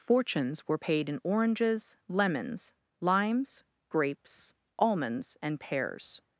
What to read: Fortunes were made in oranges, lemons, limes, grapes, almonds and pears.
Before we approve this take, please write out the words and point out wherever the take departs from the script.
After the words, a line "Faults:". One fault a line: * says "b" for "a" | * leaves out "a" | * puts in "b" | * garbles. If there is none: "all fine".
Fortunes were paid in oranges, lemons, limes, grapes, almonds and pears.
Faults:
* says "paid" for "made"